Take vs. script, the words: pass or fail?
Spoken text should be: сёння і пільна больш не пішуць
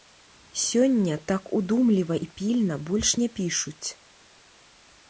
fail